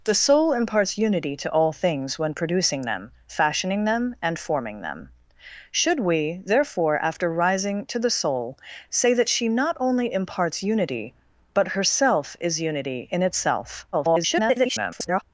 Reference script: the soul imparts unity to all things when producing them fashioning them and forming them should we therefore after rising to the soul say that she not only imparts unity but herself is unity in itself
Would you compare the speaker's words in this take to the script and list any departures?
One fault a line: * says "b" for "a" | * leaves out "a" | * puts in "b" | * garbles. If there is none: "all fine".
* garbles